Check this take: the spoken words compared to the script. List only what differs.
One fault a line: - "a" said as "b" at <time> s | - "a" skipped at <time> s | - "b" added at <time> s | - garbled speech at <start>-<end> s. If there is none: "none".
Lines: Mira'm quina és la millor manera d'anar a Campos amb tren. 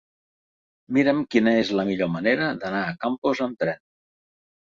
none